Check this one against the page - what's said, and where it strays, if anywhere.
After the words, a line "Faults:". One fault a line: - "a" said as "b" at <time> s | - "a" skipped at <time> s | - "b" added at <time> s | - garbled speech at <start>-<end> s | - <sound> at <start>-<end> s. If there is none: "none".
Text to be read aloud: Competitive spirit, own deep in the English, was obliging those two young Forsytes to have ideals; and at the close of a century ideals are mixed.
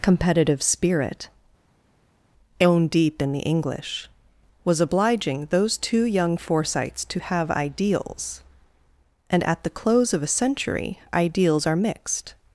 Competitive spirit, own deep in the English, was obliging those two young Forsytes to have ideals; and at the close of a century ideals are mixed.
Faults:
none